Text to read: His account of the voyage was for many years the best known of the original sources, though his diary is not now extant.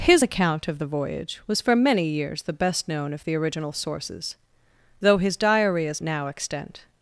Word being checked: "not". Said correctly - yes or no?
no